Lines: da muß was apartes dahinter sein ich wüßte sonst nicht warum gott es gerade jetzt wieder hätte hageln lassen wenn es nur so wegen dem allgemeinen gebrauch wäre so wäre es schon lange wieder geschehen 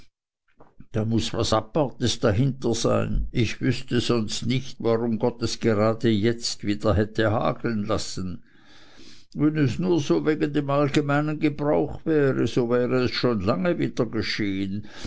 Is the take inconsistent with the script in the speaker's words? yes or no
no